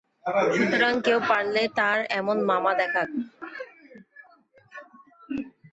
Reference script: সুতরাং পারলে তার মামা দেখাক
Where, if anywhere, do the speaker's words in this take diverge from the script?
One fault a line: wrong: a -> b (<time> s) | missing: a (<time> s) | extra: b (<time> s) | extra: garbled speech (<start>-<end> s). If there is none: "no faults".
extra: কেউ (1.0 s)
extra: এমন (2.2 s)